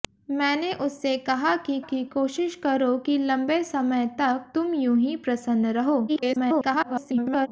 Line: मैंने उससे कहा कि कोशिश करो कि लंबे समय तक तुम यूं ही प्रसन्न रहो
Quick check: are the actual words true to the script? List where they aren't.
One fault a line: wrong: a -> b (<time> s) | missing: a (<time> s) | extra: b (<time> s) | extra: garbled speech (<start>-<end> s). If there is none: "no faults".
extra: कि (1.8 s)
extra: garbled speech (6.1-7.5 s)